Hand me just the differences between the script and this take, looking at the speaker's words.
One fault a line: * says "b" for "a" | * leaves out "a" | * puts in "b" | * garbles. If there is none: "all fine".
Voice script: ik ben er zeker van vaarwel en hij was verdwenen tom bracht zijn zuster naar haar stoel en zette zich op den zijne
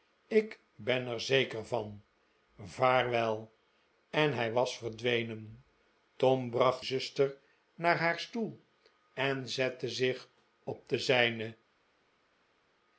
* leaves out "zijn"